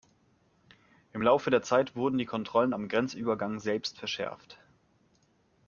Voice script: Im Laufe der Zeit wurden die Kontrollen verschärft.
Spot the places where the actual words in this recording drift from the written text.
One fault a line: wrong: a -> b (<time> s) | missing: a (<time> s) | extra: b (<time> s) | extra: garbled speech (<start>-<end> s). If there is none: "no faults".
extra: am Grenzübergang selbst (2.7 s)